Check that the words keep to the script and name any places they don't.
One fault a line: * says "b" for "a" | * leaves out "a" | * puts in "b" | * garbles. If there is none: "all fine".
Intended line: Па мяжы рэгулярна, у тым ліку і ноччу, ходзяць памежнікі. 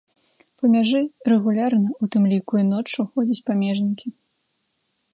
all fine